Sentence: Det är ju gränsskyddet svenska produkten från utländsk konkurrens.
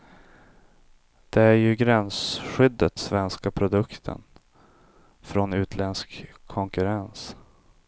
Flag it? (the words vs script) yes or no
no